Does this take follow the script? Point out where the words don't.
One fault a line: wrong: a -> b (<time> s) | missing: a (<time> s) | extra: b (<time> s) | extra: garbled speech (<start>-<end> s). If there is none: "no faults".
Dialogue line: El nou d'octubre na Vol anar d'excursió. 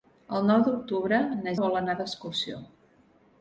no faults